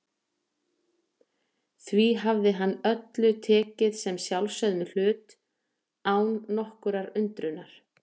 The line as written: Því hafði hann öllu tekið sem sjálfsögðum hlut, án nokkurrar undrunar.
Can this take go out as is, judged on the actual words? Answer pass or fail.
pass